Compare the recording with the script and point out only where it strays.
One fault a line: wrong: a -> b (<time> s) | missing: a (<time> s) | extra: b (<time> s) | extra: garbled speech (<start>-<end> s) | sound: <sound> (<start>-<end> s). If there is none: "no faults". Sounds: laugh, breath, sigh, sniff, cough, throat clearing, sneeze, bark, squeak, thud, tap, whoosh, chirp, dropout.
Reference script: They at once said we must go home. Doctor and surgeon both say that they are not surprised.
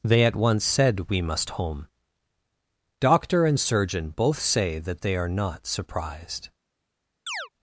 missing: go (1.5 s)
sound: chirp (7.3-7.5 s)